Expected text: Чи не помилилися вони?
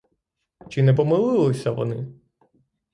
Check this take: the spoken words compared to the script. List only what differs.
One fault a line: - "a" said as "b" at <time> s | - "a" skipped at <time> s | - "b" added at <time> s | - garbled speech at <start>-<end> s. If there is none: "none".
none